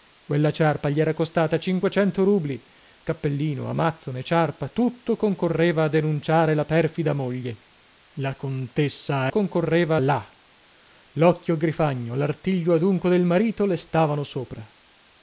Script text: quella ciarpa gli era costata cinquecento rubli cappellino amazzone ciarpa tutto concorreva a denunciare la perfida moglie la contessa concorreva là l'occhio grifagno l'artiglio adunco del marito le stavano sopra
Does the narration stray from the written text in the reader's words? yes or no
no